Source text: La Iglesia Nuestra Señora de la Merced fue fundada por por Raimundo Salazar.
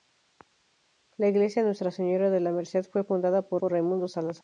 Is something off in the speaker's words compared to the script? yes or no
no